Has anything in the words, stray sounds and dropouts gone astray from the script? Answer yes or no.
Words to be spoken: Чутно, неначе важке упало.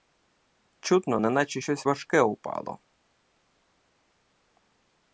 yes